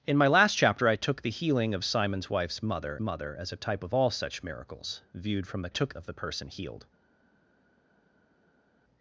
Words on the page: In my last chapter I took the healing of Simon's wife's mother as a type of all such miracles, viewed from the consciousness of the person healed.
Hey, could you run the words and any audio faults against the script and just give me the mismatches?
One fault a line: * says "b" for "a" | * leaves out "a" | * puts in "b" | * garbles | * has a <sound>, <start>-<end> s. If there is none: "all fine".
* puts in "mother"
* says "took" for "consciousness"